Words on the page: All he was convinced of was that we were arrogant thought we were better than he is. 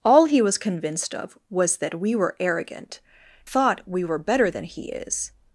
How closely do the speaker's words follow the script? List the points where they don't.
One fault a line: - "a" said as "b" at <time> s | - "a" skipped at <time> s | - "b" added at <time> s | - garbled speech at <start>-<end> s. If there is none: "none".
none